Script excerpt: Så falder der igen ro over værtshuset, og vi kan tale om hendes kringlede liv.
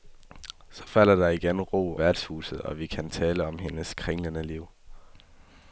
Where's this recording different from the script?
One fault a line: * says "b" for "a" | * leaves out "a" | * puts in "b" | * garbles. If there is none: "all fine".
* leaves out "over"